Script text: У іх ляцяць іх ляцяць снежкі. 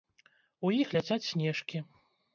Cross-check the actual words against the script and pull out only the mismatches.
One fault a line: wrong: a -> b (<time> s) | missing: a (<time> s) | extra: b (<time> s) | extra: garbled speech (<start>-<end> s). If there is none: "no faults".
missing: іх ляцяць (1.2 s)